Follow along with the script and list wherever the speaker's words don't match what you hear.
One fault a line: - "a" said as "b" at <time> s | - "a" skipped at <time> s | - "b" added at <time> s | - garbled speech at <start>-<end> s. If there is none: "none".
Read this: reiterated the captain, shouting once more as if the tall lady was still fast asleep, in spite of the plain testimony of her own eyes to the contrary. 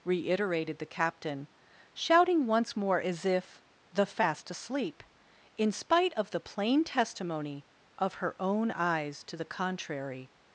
- "tall lady was still" skipped at 4.1 s